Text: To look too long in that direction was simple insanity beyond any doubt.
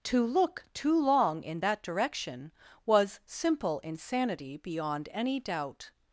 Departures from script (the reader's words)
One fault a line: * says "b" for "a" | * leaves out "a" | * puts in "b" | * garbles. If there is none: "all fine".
all fine